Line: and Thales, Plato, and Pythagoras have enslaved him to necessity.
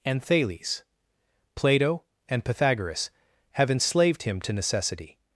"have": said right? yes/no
yes